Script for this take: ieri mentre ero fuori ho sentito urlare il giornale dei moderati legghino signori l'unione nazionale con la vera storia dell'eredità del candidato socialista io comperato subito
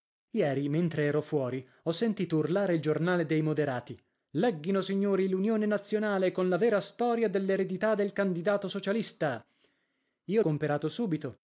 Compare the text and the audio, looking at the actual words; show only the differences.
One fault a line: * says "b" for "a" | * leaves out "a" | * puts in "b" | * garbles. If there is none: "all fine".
all fine